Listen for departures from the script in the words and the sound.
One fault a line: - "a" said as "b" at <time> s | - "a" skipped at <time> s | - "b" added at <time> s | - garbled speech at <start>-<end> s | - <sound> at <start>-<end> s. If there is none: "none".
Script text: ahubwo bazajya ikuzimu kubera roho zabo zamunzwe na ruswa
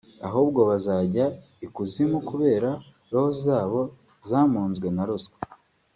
none